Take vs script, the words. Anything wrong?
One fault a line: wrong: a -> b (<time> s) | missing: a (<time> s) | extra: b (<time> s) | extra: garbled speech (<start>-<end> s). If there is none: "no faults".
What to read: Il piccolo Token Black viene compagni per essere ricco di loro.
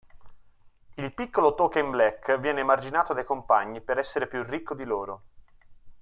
extra: emarginato dai (2.6 s)
extra: più (4.3 s)